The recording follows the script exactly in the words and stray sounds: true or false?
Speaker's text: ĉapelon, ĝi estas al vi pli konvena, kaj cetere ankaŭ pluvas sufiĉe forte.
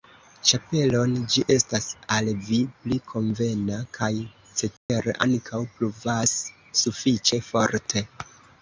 false